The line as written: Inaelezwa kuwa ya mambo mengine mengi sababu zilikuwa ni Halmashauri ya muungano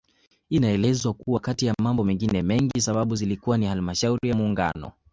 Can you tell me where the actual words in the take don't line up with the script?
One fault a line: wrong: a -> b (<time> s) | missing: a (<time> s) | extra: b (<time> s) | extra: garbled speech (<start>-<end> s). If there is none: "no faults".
extra: kati (1.4 s)